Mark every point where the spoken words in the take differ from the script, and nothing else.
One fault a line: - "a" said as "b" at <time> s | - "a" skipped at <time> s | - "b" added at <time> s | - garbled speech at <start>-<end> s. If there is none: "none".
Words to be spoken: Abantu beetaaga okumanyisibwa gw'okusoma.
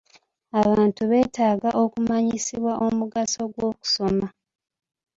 - "omugaso" added at 2.8 s